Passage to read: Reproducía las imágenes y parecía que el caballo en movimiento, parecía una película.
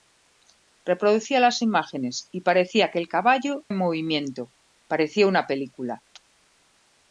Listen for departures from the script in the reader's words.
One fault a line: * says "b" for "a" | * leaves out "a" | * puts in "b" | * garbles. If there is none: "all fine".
all fine